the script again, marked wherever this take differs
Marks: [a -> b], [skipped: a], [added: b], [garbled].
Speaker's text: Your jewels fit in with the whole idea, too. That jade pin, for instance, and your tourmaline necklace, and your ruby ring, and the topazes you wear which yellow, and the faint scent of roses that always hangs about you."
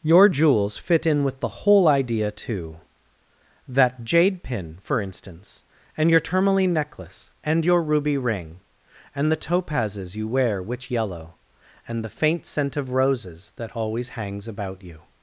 Your jewels fit in with the whole idea, too. That jade pin, for instance, and your tourmaline necklace, and your ruby ring, and the topazes you wear which yellow, and the faint scent of roses that always hangs about you."